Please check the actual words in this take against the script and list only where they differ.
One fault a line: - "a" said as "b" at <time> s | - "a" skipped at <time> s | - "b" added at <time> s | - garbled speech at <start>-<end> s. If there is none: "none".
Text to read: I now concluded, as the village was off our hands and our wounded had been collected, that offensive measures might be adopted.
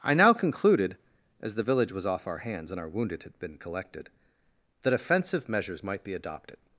none